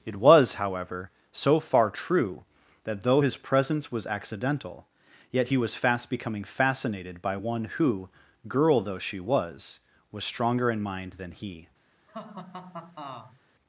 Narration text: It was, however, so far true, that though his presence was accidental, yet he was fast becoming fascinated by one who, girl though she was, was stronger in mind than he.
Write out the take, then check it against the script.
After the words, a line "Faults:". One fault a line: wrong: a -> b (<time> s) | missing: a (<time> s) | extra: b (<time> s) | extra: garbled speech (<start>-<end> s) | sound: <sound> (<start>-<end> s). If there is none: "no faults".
It was, however, so far true, that though his presence was accidental, yet he was fast becoming fascinated by one who, girl though she was, was stronger in mind than he.
Faults:
sound: laugh (12.1-13.4 s)